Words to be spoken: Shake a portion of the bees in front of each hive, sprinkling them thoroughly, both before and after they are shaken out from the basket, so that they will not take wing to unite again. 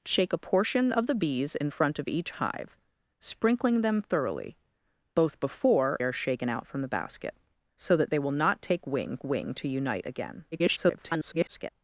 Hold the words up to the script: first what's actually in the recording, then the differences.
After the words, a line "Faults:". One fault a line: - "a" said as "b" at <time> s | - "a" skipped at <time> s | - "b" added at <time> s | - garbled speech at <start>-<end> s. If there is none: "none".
Shake a portion of the bees in front of each hive, sprinkling them thoroughly, both before are shaken out from the basket, so that they will not take wing wing to unite again. [garbled]
Faults:
- "and after they" skipped at 6.0 s
- "wing" added at 9.2 s
- garbled speech at 10.5-11.7 s